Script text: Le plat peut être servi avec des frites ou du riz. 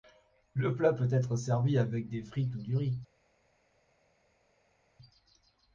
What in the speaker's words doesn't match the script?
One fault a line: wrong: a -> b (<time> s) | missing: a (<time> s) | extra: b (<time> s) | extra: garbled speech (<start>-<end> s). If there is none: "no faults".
no faults